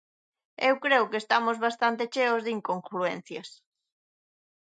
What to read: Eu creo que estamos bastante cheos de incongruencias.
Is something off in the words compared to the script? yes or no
no